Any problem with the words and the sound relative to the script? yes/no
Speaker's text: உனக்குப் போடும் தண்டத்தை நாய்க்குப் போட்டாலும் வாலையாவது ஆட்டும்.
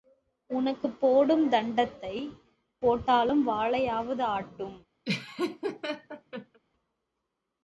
yes